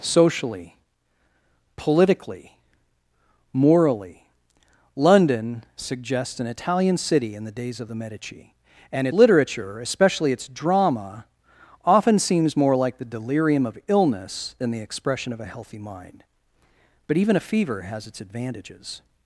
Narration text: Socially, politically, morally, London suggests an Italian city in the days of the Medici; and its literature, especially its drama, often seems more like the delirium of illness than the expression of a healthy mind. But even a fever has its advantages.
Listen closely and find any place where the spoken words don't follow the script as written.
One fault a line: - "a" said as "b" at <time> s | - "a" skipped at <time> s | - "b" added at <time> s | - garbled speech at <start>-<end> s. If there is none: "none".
- "its" skipped at 9.1 s